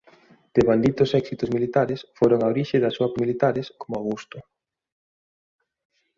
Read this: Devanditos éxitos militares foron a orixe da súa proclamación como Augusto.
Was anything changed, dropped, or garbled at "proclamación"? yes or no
yes